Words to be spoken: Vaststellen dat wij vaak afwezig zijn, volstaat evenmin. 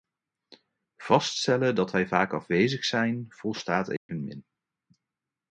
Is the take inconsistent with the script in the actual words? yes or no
no